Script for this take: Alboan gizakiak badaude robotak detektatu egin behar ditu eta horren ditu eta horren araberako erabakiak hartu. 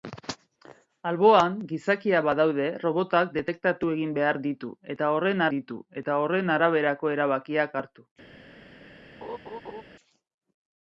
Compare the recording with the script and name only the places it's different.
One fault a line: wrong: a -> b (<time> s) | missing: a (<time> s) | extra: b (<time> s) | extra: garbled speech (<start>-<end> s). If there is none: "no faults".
no faults